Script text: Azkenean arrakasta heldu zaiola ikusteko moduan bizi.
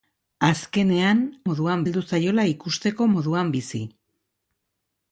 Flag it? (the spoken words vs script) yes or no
yes